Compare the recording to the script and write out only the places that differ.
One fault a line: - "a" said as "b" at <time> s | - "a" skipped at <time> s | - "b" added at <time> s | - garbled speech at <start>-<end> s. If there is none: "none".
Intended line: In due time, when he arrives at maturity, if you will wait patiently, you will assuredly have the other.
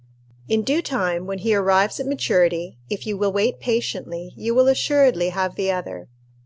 none